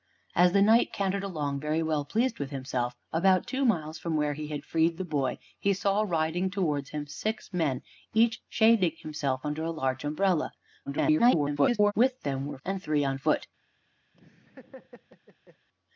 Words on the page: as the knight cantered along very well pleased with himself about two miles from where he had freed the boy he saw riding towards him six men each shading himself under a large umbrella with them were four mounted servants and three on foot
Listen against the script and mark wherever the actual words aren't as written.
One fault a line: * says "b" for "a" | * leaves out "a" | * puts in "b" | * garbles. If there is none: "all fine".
* garbles
* leaves out "four mounted servants"